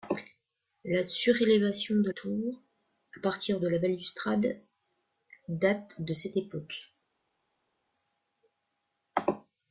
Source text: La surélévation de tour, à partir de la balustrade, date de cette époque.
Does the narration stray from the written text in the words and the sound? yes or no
no